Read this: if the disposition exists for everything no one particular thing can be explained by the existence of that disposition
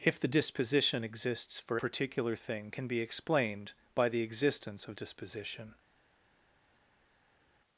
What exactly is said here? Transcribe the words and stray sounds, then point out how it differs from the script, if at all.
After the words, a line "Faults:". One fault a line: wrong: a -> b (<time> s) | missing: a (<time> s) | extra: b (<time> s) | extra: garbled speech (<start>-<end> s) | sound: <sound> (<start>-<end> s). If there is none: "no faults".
if the disposition exists for particular thing can be explained by the existence of disposition
Faults:
missing: everything no one (1.8 s)
missing: that (5.0 s)